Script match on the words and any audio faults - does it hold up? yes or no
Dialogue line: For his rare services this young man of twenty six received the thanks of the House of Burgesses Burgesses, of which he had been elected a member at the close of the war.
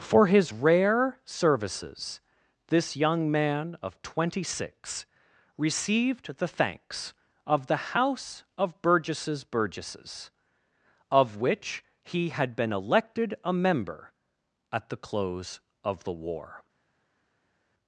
yes